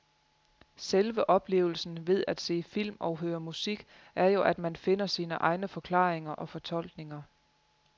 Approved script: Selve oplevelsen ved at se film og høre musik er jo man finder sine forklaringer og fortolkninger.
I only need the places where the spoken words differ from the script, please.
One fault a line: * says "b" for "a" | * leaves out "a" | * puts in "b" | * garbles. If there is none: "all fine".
* puts in "at"
* puts in "egne"